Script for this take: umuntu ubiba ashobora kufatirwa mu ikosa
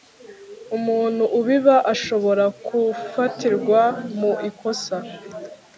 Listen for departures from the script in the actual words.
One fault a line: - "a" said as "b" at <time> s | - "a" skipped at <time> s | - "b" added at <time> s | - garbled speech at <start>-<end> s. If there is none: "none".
none